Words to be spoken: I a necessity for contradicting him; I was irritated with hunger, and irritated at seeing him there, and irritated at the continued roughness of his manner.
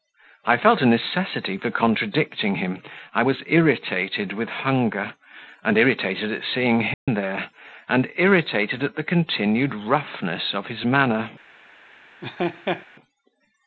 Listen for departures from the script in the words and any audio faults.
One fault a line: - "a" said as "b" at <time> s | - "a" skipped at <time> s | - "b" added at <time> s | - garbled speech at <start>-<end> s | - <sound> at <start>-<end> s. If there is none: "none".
- "felt" added at 0.6 s
- dropout at 6.9-7.1 s
- laugh at 12.2-12.9 s